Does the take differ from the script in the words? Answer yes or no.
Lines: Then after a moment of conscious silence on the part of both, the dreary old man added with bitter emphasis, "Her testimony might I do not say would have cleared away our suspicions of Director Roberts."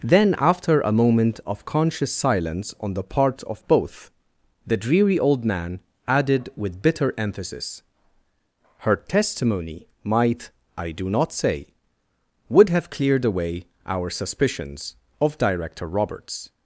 no